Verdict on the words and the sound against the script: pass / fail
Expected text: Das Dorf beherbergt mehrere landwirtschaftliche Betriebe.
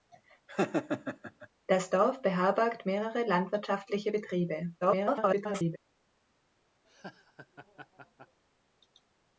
fail